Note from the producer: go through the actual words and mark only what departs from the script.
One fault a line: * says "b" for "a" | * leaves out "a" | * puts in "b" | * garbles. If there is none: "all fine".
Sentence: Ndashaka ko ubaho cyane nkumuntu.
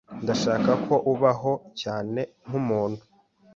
all fine